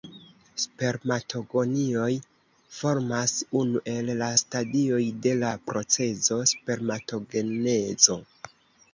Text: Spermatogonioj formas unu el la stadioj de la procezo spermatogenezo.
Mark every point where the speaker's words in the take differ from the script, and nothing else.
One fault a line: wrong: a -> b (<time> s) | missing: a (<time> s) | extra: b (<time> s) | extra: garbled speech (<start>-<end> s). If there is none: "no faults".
no faults